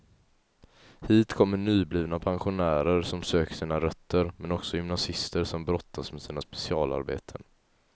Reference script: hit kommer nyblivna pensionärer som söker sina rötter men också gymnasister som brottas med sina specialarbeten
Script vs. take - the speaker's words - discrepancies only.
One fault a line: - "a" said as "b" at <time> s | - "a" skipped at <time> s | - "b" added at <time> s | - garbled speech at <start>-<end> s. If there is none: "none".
none